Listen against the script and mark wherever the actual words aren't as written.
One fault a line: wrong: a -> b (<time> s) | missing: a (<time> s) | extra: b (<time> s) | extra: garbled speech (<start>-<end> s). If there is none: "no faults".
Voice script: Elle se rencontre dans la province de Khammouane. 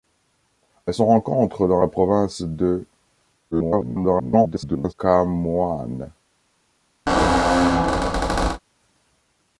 extra: garbled speech (3.5-4.9 s)